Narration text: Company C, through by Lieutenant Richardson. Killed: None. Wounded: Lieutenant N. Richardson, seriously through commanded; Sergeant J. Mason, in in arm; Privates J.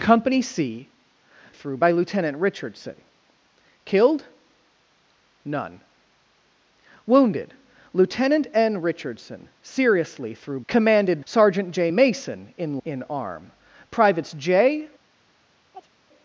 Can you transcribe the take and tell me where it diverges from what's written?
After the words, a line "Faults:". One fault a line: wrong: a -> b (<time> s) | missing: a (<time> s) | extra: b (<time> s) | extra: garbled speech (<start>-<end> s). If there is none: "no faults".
Company C, through by Lieutenant Richardson. Killed: None. Wounded: Lieutenant N. Richardson, seriously through commanded; Sergeant J. Mason, in in arm; Privates J.
Faults:
no faults